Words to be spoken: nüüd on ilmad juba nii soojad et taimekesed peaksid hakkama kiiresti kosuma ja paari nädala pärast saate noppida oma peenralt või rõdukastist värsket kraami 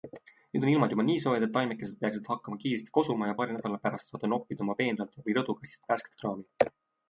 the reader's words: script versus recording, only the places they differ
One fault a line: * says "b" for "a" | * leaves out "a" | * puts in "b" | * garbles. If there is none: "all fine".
all fine